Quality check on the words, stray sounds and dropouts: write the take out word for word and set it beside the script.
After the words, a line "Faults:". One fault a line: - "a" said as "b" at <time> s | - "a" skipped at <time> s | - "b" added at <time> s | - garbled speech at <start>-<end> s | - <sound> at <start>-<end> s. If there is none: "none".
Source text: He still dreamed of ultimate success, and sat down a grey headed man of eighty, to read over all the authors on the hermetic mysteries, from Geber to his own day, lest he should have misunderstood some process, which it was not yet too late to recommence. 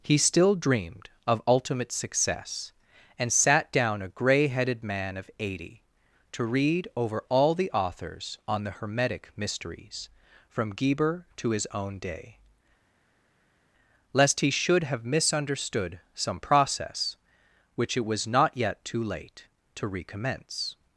He still dreamed of ultimate success, and sat down a grey headed man of eighty, to read over all the authors on the hermetic mysteries, from Geber to his own day, lest he should have misunderstood some process, which it was not yet too late to recommence.
Faults:
none